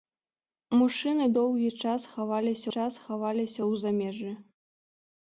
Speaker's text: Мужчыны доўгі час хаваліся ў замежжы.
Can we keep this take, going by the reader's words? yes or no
no